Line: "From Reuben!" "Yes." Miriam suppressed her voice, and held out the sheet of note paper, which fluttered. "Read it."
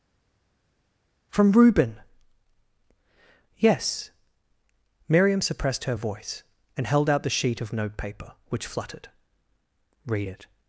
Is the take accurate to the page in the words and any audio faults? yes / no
yes